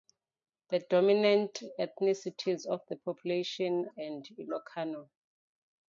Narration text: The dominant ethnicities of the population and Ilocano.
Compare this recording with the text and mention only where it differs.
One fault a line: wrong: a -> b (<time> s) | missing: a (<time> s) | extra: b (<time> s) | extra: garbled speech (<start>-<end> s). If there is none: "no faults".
no faults